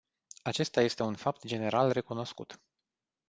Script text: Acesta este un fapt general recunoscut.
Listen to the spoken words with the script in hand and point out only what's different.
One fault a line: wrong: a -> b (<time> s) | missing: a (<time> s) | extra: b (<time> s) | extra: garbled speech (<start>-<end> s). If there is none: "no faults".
no faults